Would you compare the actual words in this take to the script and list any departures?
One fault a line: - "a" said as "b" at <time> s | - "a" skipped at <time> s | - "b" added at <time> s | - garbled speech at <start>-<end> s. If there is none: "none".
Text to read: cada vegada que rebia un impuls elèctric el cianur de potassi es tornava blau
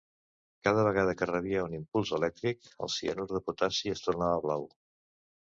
none